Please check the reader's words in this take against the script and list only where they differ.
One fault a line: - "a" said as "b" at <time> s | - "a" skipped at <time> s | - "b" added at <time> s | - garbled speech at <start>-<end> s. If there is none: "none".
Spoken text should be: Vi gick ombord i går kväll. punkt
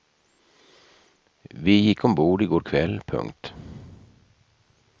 none